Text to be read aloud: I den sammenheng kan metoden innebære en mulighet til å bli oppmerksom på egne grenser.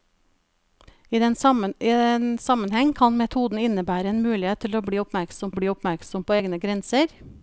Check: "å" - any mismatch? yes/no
no